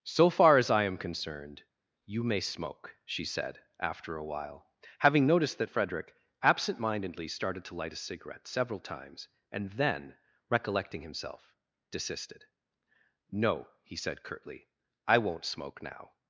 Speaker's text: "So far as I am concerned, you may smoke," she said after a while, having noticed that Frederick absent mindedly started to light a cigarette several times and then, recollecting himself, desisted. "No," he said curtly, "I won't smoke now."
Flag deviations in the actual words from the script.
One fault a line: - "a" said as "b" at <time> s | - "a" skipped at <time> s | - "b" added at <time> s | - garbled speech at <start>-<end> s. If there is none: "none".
none